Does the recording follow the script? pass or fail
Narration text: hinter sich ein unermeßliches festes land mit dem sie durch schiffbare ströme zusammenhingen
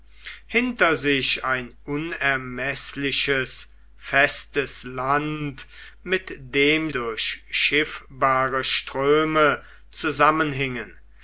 fail